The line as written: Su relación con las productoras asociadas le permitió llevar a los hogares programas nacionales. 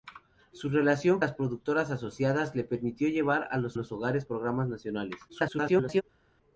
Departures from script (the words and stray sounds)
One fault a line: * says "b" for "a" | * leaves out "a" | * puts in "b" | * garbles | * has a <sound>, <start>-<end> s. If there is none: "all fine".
* leaves out "con"
* puts in "los"
* garbles